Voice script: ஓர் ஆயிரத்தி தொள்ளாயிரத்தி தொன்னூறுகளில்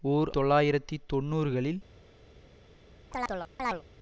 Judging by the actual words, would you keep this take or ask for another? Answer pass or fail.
fail